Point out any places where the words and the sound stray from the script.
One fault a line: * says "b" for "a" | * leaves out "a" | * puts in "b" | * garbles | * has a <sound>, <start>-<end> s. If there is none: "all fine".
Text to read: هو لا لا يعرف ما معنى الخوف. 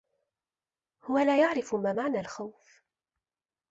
* leaves out "لا"